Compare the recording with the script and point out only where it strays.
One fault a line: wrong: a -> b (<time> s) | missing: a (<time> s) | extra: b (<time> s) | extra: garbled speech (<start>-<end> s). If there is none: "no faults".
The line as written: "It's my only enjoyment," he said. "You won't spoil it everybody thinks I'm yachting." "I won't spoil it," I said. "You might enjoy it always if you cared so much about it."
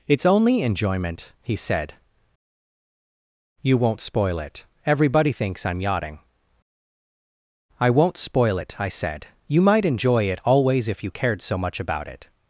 missing: my (0.2 s)